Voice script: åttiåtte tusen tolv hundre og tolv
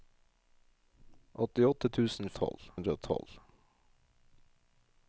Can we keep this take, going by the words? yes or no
yes